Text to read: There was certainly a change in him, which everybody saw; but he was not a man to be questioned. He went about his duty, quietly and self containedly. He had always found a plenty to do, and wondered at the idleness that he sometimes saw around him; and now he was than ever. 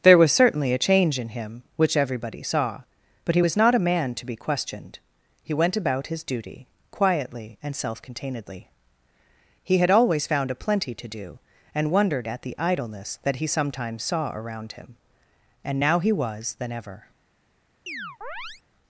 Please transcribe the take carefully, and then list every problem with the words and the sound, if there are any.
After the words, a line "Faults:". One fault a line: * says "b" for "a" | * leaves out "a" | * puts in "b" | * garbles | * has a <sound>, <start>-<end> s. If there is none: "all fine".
There was certainly a change in him, which everybody saw; but he was not a man to be questioned. He went about his duty, quietly and self containedly. He had always found a plenty to do, and wondered at the idleness that he sometimes saw around him; and now he was than ever.
Faults:
* has a chirp, 17.9-18.6 s